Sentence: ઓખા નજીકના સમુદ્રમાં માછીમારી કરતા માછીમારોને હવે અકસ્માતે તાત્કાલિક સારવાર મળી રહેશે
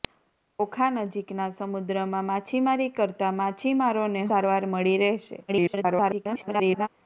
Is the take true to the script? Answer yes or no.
no